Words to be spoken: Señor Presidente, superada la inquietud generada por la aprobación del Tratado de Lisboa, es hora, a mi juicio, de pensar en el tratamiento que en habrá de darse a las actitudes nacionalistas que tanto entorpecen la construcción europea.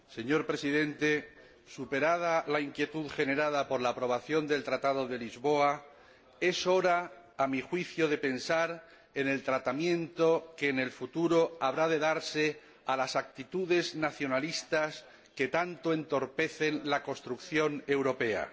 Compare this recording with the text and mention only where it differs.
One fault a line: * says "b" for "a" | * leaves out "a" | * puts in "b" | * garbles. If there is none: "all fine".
* puts in "el futuro"